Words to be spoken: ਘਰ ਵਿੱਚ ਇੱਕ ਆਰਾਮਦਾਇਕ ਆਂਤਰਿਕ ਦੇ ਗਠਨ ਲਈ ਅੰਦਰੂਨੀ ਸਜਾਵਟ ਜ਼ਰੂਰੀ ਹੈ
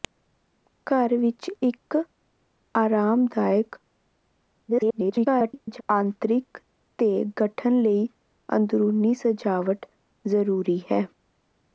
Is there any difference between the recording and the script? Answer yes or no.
yes